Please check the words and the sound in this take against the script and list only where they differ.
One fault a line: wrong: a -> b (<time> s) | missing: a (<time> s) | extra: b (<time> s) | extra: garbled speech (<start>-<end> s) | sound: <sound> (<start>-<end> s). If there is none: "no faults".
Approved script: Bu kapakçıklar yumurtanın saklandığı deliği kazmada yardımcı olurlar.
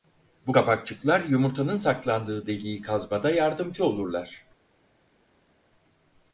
no faults